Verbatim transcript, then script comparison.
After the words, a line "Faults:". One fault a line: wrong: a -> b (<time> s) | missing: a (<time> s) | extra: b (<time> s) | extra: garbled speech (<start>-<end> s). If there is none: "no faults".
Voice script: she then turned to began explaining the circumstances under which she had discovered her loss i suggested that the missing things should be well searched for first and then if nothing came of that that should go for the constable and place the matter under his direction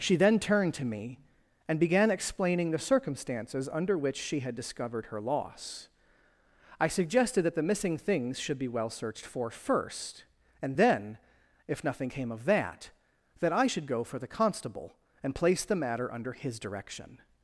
she then turned to me and began explaining the circumstances under which she had discovered her loss i suggested that the missing things should be well searched for first and then if nothing came of that that i should go for the constable and place the matter under his direction
Faults:
extra: me and (0.8 s)
extra: i (13.5 s)